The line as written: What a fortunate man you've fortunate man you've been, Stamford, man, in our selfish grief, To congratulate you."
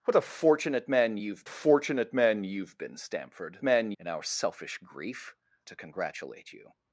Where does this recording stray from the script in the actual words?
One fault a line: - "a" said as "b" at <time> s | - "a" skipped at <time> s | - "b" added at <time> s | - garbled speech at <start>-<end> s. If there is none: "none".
none